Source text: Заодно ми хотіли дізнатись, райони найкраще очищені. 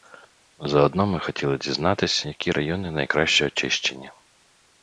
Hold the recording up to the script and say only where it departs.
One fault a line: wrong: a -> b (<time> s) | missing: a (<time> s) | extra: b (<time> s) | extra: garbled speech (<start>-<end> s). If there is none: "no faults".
extra: які (2.2 s)